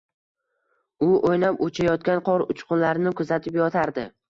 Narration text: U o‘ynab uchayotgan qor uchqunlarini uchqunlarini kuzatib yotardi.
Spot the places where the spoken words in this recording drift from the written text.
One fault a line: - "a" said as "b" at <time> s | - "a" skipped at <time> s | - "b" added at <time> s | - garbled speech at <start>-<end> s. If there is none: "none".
- "uchqunlarini" skipped at 3.2 s